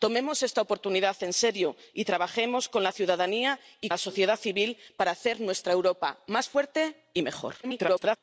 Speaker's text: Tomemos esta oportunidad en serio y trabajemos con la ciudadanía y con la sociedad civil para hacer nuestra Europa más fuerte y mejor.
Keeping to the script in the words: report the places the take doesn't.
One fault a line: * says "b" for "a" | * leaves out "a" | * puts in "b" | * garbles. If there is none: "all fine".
* leaves out "con"
* garbles